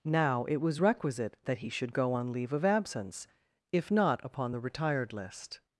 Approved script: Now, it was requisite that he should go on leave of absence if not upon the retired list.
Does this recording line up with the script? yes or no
yes